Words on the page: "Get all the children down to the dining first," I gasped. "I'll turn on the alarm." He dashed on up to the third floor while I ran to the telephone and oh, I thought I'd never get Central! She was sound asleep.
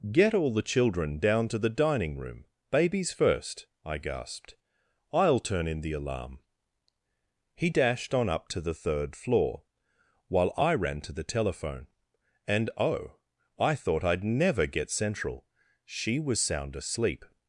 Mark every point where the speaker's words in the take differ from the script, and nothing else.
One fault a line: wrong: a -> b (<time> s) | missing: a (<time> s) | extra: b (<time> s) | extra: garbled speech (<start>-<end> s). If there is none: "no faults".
extra: room babies (2.2 s)
wrong: on -> in (5.7 s)